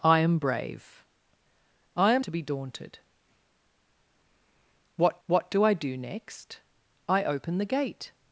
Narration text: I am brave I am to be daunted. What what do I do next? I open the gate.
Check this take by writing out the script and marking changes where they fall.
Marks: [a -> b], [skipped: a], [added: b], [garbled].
I am brave I am to be daunted. What what do I do next? I open the gate.